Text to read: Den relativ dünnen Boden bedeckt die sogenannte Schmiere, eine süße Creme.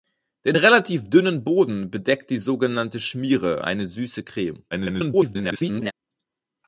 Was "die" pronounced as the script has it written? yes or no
yes